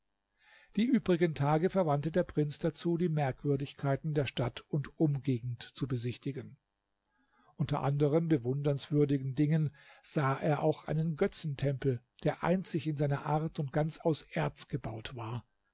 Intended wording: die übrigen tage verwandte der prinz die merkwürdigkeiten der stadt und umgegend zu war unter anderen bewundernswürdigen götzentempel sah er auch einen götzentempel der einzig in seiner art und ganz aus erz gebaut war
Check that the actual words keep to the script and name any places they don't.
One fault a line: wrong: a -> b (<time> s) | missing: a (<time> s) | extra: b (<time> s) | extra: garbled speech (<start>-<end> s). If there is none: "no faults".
extra: dazu (2.6 s)
wrong: war -> besichtigen (5.9 s)
wrong: götzentempel -> dingen (9.4 s)